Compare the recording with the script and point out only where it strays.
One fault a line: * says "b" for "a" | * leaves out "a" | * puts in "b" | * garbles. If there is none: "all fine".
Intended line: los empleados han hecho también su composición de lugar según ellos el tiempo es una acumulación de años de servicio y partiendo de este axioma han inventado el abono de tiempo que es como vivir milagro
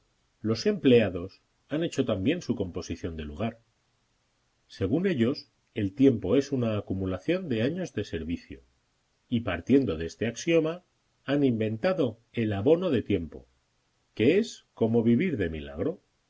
* puts in "de"